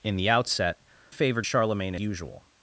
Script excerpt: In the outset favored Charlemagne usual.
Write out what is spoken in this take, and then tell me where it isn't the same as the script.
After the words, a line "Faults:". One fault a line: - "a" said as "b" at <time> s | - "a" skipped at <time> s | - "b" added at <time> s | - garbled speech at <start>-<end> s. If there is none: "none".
In the outset favored Charlemagne usual.
Faults:
none